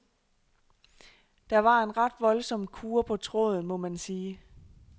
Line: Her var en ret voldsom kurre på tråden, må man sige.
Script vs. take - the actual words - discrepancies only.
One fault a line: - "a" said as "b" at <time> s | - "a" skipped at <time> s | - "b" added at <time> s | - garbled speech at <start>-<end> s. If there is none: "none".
- "Her" said as "Der" at 1.5 s